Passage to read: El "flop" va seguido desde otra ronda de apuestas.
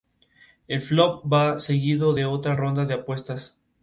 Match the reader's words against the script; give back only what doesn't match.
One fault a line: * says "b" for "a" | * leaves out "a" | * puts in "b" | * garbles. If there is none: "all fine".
* says "de" for "desde"